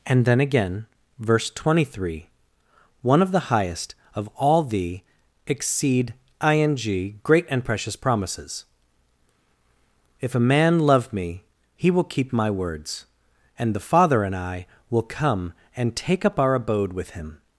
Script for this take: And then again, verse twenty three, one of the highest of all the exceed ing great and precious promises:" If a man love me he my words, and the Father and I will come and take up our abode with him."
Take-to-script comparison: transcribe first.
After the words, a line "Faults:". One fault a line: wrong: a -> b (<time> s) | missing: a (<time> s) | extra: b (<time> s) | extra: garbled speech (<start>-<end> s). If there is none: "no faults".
And then again, verse twenty three, one of the highest of all the exceed ing great and precious promises:" If a man love me he will keep my words, and the Father and I will come and take up our abode with him."
Faults:
extra: will keep (11.9 s)